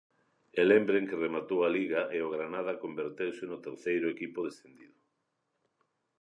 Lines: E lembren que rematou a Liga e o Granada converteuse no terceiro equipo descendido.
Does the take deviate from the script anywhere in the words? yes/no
no